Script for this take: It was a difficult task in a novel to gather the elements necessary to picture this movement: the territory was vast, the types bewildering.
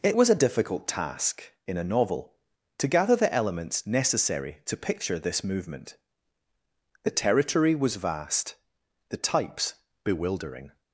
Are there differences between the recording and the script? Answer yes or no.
no